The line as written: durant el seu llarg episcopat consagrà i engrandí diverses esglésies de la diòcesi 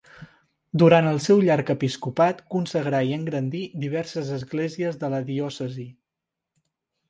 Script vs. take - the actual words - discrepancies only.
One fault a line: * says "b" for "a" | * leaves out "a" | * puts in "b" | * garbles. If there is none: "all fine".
all fine